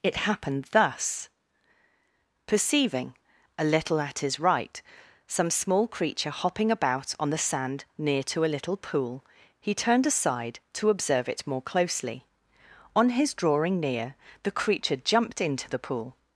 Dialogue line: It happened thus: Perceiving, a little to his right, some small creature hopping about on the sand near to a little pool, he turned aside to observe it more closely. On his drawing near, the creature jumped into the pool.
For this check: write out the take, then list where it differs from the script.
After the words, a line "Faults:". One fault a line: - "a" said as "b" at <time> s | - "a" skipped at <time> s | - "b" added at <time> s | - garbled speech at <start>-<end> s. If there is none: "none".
It happened thus: Perceiving, a little at his right, some small creature hopping about on the sand near to a little pool, he turned aside to observe it more closely. On his drawing near, the creature jumped into the pool.
Faults:
- "to" said as "at" at 4.0 s